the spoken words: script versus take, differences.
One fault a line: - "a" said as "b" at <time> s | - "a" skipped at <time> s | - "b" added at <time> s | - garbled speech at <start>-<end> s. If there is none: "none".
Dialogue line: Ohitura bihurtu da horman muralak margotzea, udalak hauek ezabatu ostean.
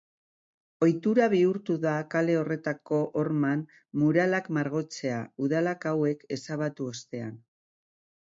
- "kale horretako" added at 2.1 s